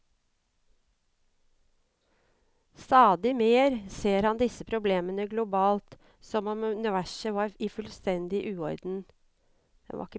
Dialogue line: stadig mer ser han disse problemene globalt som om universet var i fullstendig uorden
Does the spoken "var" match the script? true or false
true